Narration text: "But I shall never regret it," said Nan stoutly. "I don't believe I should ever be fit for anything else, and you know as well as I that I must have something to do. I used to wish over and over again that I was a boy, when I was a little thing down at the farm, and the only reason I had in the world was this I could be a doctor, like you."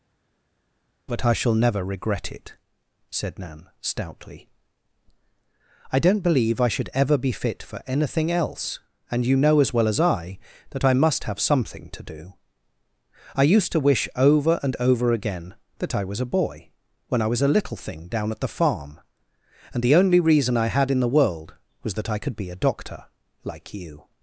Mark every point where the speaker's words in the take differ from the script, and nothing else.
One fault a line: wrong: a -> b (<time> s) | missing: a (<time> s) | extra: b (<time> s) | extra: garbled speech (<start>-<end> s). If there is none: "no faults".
wrong: this -> that (21.9 s)